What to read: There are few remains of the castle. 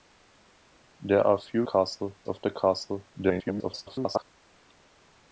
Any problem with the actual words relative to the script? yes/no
yes